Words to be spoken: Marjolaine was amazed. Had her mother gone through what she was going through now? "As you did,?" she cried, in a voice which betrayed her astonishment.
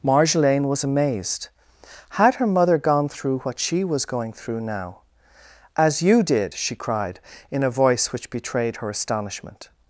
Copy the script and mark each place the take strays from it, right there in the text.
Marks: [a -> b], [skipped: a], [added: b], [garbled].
Marjolaine was amazed. Had her mother gone through what she was going through now? "As you did,?" she cried, in a voice which betrayed her astonishment.